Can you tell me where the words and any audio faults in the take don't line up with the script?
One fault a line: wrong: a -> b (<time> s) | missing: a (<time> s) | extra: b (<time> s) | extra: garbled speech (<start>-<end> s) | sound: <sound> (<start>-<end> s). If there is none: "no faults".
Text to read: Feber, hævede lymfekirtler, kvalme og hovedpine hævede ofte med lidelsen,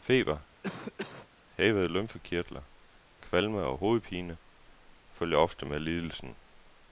sound: cough (0.6-1.3 s)
wrong: hævede -> følger (5.1 s)